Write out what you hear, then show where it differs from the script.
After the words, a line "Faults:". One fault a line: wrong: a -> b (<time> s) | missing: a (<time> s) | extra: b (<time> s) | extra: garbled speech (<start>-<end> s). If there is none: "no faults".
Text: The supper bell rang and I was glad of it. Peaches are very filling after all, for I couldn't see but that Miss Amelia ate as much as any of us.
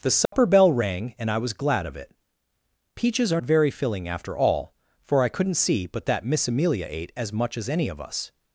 The supper bell rang and I was glad of it. Peaches are very filling after all, for I couldn't see but that Miss Amelia ate as much as any of us.
Faults:
no faults